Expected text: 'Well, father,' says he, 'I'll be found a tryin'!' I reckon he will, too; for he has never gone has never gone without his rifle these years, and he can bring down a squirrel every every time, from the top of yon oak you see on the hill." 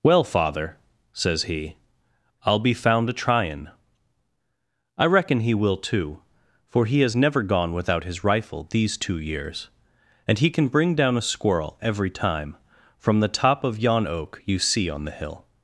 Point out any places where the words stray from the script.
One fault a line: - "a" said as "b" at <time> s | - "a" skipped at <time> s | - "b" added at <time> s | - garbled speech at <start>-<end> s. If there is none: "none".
- "has never gone" skipped at 7.7 s
- "two" added at 9.0 s
- "every" skipped at 12.1 s